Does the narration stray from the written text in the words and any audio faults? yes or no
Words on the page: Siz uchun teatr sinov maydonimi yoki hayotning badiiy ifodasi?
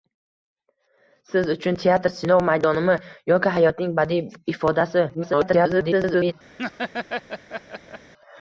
yes